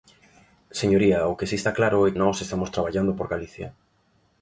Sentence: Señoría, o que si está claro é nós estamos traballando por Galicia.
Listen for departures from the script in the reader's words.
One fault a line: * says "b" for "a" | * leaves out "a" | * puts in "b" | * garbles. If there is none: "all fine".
all fine